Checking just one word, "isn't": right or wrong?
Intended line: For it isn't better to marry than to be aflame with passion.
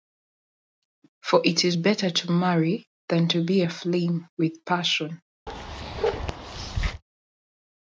wrong